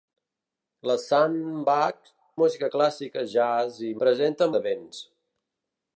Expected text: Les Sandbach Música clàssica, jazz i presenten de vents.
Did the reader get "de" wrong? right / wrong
right